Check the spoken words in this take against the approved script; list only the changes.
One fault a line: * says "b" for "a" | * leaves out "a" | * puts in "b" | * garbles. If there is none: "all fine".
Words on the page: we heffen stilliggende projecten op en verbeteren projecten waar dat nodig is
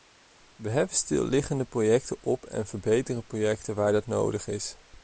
all fine